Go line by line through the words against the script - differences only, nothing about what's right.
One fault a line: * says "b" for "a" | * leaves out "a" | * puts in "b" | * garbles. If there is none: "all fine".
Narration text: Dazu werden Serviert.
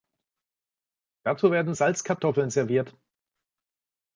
* puts in "Salzkartoffeln"